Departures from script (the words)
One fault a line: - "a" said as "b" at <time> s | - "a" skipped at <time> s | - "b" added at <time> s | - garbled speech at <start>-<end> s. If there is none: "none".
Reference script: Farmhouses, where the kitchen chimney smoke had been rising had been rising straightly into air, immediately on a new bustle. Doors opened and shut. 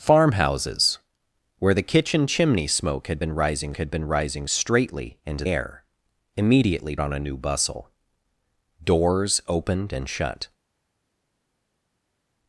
none